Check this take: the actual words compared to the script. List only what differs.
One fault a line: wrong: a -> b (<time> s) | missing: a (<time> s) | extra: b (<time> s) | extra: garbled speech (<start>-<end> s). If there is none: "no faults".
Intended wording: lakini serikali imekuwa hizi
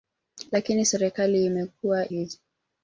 no faults